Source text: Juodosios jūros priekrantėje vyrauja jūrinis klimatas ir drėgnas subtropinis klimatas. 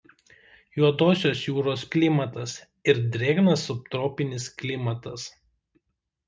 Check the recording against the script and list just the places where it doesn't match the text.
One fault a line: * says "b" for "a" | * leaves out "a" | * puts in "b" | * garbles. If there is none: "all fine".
* leaves out "priekrantėje vyrauja jūrinis"